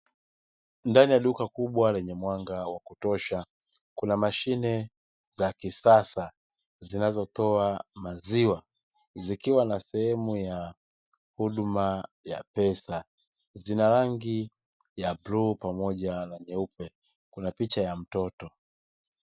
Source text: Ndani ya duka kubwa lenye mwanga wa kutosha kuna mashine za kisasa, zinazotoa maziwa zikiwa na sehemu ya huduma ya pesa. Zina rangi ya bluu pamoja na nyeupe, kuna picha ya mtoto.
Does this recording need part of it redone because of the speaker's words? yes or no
no